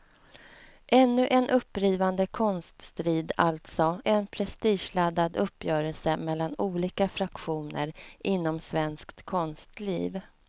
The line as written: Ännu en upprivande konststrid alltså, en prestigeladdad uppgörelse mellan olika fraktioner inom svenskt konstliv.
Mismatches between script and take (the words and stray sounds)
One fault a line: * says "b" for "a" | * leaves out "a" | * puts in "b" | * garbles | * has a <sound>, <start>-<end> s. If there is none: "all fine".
all fine